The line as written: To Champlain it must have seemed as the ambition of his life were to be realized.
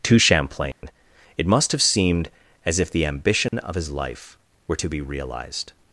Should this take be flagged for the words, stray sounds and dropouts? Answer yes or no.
yes